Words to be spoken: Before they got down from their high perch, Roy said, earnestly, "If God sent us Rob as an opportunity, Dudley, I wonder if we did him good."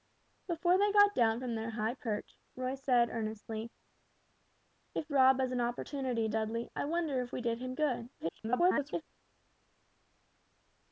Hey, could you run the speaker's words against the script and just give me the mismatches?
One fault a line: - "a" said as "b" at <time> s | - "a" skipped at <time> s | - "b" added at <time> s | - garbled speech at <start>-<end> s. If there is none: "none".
- "God sent us" skipped at 5.1 s
- garbled speech at 8.2-9.0 s